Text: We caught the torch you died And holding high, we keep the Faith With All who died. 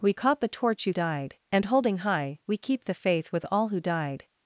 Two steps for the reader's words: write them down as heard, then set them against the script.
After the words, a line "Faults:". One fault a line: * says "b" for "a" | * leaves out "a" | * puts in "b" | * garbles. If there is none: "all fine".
We caught the torch you died And holding high, we keep the Faith With All who died.
Faults:
all fine